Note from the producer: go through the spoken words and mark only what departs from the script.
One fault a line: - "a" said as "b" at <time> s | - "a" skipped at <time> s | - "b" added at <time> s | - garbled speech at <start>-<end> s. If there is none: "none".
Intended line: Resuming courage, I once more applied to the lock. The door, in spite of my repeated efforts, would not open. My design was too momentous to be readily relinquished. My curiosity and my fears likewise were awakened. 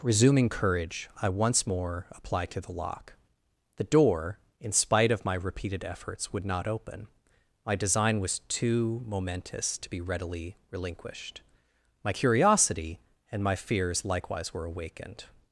none